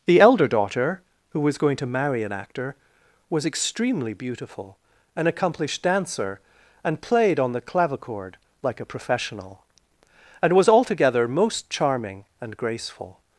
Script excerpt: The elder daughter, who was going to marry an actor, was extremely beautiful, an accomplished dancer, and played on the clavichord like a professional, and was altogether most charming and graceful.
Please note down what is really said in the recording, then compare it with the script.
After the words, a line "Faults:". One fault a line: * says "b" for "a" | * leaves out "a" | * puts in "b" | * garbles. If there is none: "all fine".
The elder daughter, who was going to marry an actor, was extremely beautiful, an accomplished dancer, and played on the clavichord like a professional, and was altogether most charming and graceful.
Faults:
all fine